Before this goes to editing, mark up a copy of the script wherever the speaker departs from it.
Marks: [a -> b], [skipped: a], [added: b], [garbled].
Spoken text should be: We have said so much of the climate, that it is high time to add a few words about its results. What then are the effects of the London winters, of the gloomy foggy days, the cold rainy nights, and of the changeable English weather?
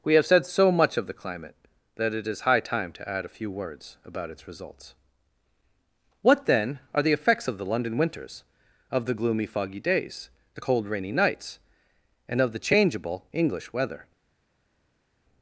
We have said so much of the climate, that it is high time to add a few words about its results. What then are the effects of the London winters, of the gloomy foggy days, the cold rainy nights, and of the changeable English weather?